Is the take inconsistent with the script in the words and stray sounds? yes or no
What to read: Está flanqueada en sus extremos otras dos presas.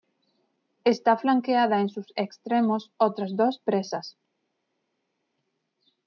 no